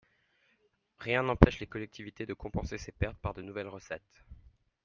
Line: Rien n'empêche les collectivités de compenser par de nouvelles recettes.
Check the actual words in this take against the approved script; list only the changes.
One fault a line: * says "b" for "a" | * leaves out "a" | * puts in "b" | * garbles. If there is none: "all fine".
* puts in "ces pertes"